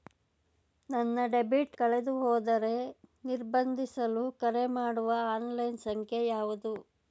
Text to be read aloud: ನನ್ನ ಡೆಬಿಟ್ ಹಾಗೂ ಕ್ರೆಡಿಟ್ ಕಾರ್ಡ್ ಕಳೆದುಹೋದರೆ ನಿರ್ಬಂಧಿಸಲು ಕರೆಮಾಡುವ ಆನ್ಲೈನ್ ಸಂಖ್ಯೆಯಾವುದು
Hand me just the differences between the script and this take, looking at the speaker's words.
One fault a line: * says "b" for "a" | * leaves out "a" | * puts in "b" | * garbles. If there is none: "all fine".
* leaves out "ಹಾಗೂ ಕ್ರೆಡಿಟ್ ಕಾರ್ಡ್"